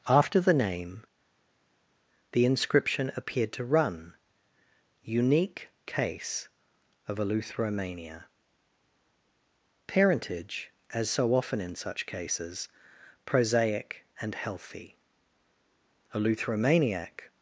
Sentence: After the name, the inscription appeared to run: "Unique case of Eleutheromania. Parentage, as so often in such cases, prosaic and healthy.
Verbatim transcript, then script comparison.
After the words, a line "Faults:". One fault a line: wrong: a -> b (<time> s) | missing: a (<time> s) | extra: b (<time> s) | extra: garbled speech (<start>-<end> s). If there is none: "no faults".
After the name, the inscription appeared to run: "Unique case of Eleutheromania. Parentage, as so often in such cases, prosaic and healthy. Eleutheromaniac
Faults:
extra: Eleutheromaniac (16.1 s)